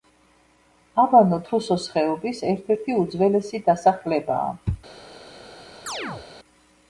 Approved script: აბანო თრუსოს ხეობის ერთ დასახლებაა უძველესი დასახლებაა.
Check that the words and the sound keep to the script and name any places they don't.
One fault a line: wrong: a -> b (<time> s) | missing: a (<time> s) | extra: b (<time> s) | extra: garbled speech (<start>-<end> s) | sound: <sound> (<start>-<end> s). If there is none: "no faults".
wrong: დასახლებაა -> ერთი (2.7 s)
sound: chirp (5.9-6.3 s)